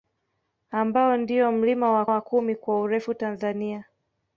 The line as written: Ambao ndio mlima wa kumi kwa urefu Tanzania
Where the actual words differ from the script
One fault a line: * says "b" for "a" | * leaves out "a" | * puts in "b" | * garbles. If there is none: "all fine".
* puts in "wa"